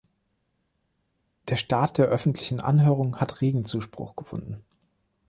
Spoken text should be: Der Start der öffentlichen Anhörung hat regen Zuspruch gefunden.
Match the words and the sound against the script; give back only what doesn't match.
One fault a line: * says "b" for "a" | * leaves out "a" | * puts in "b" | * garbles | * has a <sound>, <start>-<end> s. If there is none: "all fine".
all fine